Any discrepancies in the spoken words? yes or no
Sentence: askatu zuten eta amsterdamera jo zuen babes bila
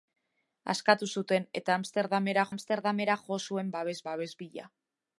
yes